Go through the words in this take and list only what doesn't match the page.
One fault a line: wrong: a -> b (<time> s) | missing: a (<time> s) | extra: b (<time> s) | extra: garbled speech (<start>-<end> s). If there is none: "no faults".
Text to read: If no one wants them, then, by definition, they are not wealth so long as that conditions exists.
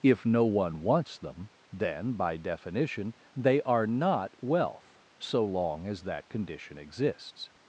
wrong: conditions -> condition (6.3 s)